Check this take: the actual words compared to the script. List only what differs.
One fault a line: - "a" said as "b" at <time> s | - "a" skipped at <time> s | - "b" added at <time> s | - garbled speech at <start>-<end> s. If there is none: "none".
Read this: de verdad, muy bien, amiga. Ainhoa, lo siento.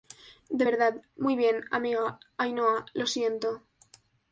none